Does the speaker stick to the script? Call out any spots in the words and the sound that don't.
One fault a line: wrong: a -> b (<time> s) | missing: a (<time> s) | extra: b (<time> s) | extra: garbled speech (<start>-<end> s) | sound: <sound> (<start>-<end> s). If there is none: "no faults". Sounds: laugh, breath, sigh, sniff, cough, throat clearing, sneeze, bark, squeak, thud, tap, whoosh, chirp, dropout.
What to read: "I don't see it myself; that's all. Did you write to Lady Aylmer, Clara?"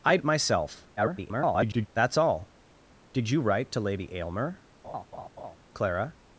missing: don't see (0.2 s)
extra: garbled speech (1.0-1.9 s)
sound: laugh (4.8-5.6 s)